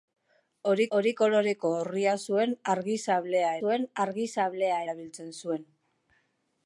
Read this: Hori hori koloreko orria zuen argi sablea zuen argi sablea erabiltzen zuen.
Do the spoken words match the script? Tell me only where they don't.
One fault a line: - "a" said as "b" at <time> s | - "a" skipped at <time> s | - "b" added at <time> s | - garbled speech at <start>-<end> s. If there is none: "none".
none